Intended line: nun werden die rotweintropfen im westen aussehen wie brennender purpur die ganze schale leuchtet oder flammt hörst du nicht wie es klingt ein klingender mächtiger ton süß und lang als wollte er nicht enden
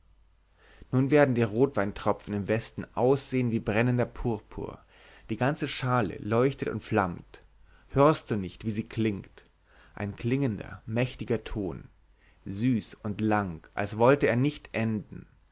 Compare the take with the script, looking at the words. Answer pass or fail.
fail